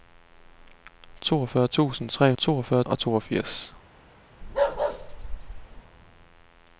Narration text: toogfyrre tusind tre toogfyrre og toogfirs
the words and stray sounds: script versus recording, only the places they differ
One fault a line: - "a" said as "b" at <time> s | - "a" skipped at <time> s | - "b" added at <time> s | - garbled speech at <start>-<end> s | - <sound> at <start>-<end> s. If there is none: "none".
- bark at 4.4-5.8 s